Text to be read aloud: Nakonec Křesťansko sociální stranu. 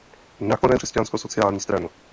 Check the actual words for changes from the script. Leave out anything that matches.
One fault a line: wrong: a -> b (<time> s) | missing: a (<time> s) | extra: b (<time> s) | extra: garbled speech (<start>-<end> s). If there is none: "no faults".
no faults